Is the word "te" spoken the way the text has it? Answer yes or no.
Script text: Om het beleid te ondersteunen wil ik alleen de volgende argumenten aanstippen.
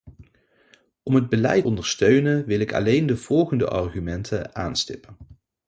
no